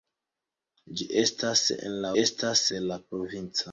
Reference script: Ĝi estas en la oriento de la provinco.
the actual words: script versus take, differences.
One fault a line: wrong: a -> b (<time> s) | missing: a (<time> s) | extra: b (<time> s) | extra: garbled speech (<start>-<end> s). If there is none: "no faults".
wrong: oriento -> estas (2.2 s)